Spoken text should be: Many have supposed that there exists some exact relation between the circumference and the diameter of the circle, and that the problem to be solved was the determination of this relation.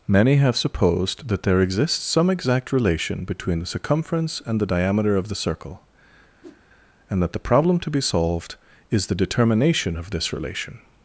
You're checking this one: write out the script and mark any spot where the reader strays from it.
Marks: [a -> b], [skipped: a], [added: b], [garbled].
Many have supposed that there exists some exact relation between the circumference and the diameter of the circle, and that the problem to be solved [was -> is] the determination of this relation.